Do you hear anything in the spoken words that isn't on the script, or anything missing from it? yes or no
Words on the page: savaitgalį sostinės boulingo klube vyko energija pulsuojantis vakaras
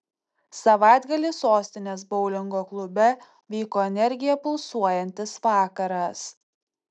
no